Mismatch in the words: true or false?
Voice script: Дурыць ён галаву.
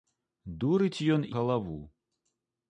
false